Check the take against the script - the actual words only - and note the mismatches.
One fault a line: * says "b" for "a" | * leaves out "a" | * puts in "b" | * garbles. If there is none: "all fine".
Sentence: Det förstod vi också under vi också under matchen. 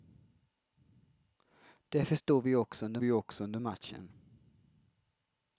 all fine